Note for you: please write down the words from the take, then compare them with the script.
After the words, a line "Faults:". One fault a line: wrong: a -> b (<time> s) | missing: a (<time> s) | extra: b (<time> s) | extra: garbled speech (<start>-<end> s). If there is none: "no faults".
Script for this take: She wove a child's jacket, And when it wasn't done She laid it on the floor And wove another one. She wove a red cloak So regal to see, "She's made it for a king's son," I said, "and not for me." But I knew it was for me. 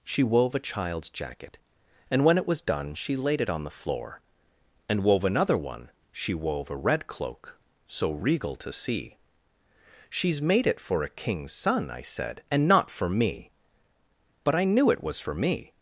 She wove a child's jacket, And when it was done She laid it on the floor And wove another one. She wove a red cloak So regal to see, "She's made it for a king's son," I said, "and not for me." But I knew it was for me.
Faults:
wrong: wasn't -> was (2.5 s)